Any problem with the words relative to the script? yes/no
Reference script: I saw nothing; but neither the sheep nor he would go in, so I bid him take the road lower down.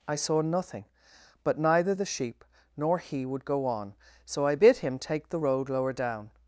yes